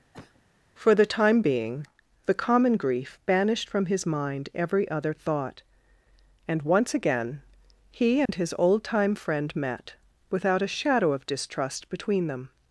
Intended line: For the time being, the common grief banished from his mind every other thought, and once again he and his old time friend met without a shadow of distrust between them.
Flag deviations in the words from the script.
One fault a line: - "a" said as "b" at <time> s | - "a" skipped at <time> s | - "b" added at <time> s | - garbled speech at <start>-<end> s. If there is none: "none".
none